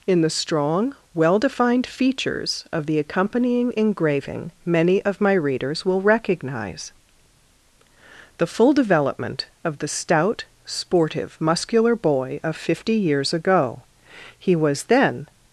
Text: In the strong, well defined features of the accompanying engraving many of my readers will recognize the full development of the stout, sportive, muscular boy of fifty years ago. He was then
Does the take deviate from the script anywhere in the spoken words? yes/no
no